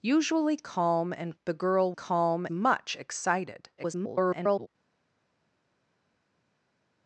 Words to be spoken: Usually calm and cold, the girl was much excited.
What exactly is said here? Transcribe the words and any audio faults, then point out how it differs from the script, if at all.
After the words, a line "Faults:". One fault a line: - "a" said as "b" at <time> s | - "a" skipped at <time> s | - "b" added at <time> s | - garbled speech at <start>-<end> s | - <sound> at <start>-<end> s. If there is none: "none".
Usually calm and the girl calm much excited. [garbled]
Faults:
- "cold" skipped at 1.4 s
- "was" said as "calm" at 1.9 s
- garbled speech at 3.8-4.7 s